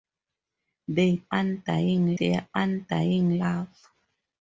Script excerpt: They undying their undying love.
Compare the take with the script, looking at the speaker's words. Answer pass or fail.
pass